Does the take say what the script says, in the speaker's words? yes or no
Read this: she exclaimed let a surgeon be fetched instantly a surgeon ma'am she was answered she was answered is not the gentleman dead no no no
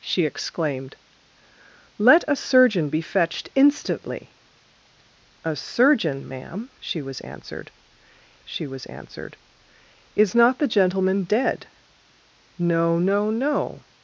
yes